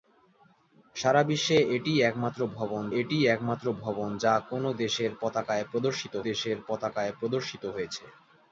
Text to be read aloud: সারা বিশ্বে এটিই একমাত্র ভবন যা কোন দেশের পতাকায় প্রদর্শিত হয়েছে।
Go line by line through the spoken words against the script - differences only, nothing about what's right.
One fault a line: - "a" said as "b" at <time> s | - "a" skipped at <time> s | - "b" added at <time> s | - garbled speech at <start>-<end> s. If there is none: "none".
- "এটিই একমাত্র ভবন" added at 3.0 s
- "দেশের পতাকায় প্রদর্শিত" added at 6.3 s